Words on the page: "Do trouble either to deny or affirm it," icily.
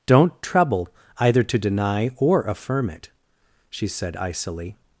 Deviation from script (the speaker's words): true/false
true